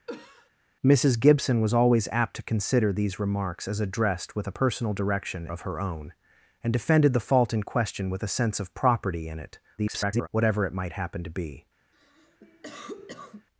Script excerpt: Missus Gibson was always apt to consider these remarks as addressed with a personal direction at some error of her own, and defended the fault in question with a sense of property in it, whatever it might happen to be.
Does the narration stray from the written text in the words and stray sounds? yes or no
yes